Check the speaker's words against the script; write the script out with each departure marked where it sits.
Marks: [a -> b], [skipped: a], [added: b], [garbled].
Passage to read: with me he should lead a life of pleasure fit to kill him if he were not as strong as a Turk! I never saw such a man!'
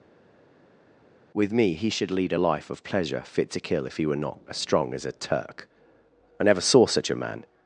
with me he should lead a life of pleasure fit to kill [skipped: him] if he were not as strong as a Turk! I never saw such a man!'